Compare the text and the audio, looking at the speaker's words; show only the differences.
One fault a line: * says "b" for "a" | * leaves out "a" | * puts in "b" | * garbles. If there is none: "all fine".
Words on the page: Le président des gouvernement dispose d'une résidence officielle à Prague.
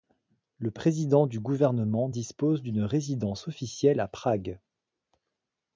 * says "du" for "des"